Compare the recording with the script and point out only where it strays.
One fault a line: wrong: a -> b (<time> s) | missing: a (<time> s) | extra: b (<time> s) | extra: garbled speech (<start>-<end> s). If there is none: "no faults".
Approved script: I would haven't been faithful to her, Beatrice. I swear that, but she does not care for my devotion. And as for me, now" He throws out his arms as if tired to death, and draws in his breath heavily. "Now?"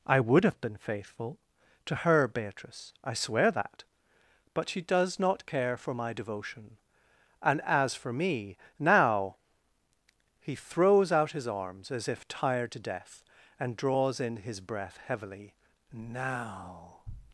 wrong: haven't -> have (0.4 s)